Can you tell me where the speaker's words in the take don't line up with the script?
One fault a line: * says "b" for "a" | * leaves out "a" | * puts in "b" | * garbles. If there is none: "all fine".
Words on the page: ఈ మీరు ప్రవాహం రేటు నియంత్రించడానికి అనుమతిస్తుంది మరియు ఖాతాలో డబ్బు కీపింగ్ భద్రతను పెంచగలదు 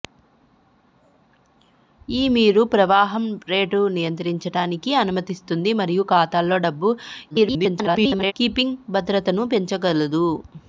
* garbles